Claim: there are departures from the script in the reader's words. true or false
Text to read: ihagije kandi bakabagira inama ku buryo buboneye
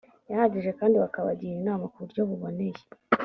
false